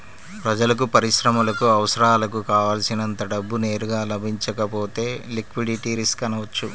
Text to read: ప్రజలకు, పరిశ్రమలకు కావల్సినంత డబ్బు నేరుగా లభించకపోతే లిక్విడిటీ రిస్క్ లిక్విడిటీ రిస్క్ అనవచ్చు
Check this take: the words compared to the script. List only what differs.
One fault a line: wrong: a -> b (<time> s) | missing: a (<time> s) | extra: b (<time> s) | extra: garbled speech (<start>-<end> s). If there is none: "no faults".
extra: అవసరాలకు (1.7 s)
missing: లిక్విడిటీ రిస్క్ (6.2 s)